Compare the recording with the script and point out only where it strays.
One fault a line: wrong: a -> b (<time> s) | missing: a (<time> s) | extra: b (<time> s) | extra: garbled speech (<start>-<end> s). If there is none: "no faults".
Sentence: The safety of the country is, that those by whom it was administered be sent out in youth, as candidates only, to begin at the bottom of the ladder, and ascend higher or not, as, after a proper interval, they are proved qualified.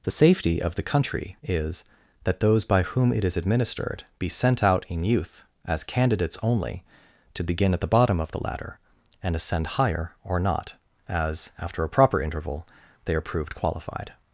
wrong: was -> is (3.2 s)